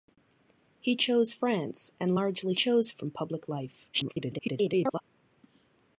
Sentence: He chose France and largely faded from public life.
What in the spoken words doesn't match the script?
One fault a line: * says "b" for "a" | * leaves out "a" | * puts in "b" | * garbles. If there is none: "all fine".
* says "chose" for "faded"
* garbles